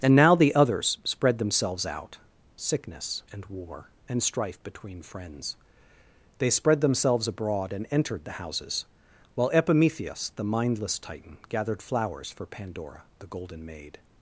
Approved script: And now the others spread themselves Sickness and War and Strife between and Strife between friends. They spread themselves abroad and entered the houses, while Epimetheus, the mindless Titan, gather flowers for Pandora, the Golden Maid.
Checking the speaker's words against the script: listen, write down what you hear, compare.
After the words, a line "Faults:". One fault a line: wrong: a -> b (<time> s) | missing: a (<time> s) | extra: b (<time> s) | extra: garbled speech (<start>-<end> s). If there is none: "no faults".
And now the others spread themselves out Sickness and War and Strife between friends. They spread themselves abroad and entered the houses, while Epimetheus, the mindless Titan, gathered flowers for Pandora, the Golden Maid.
Faults:
extra: out (1.9 s)
missing: and Strife between (5.0 s)
wrong: gather -> gathered (11.5 s)